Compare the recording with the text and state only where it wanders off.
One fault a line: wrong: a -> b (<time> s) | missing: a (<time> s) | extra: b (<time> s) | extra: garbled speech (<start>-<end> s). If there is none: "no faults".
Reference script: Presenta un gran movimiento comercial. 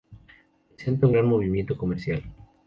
no faults